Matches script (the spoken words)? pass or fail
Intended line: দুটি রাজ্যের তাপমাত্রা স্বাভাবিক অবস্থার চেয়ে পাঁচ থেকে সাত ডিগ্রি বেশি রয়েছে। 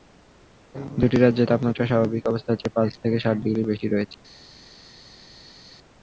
pass